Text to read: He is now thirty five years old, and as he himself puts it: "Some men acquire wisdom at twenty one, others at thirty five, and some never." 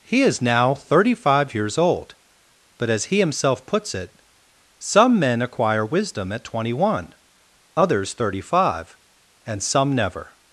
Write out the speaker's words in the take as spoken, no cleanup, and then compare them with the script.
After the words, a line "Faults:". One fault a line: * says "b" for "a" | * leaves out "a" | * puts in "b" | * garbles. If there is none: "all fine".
He is now thirty five years old, but as he himself puts it: "Some men acquire wisdom at twenty one, others thirty five, and some never."
Faults:
* says "but" for "and"
* leaves out "at"